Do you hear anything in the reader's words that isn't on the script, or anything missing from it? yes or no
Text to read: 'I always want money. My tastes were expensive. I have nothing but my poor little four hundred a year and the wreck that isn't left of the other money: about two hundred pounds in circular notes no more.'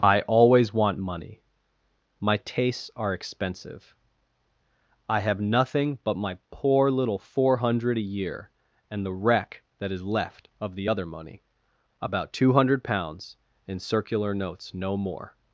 yes